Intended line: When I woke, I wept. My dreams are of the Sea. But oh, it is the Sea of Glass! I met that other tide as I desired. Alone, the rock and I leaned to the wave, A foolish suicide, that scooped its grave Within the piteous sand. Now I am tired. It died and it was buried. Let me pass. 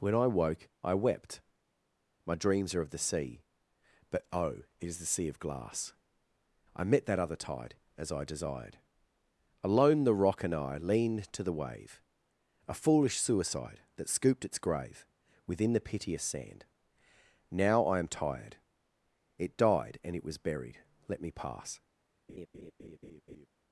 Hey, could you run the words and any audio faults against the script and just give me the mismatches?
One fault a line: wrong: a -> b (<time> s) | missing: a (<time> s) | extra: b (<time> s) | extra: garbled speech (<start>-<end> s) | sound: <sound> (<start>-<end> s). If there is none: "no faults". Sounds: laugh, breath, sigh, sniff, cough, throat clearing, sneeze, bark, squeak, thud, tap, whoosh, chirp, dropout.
sound: laugh (22.3-23.5 s)